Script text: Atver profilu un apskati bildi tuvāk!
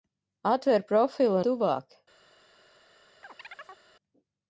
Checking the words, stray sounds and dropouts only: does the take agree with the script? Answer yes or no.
no